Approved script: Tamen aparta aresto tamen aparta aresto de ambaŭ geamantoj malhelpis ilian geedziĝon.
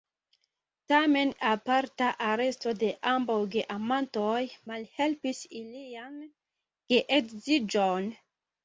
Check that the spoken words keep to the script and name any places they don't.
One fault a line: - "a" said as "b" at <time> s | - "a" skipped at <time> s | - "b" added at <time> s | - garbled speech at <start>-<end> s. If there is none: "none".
- "tamen aparta aresto" skipped at 2.7 s